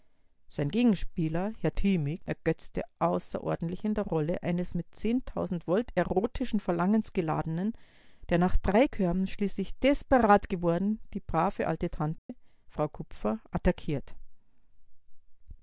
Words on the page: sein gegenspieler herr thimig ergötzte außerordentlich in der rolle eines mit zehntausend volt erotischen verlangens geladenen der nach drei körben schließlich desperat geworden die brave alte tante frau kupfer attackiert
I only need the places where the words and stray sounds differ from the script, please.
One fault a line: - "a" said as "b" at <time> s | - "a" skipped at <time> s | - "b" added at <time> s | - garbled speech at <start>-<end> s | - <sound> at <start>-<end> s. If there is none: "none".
- dropout at 12.2-12.3 s